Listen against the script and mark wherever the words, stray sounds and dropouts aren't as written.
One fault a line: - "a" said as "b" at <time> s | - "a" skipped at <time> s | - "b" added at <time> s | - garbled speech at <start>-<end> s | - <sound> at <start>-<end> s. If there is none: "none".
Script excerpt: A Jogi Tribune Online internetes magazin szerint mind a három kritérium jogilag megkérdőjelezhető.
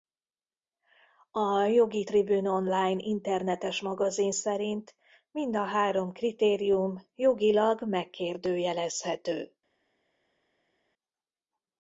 none